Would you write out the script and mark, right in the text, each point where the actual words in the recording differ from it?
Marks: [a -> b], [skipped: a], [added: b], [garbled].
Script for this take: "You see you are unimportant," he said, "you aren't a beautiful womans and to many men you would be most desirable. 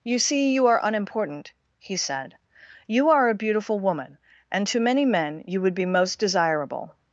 "You see you are unimportant," he said, "you [aren't -> are] a beautiful [womans -> woman] and to many men you would be most desirable.